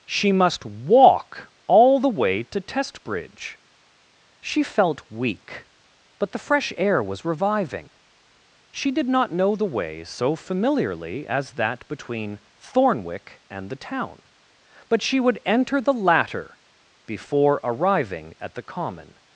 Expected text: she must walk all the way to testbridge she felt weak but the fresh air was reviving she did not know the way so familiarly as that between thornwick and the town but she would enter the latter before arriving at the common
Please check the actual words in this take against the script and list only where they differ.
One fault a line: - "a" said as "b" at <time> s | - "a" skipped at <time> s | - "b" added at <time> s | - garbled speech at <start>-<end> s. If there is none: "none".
none